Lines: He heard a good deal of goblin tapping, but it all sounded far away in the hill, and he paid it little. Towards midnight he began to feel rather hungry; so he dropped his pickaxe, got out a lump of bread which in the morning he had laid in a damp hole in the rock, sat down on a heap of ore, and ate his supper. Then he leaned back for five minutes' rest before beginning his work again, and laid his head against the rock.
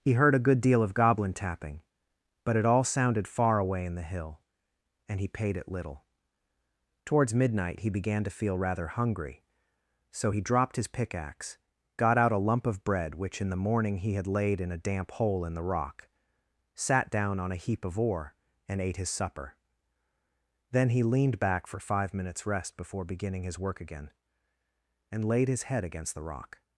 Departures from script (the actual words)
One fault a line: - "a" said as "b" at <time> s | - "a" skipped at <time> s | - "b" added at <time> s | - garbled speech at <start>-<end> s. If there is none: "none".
none